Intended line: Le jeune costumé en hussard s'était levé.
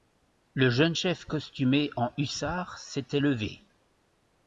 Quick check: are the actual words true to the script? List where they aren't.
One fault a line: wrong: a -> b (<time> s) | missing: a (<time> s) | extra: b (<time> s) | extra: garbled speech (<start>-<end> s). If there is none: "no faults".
extra: chef (0.9 s)